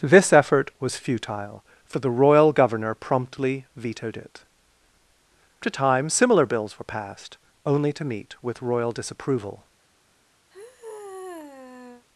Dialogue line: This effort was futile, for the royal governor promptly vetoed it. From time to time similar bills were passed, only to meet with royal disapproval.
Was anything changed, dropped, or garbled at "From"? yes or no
yes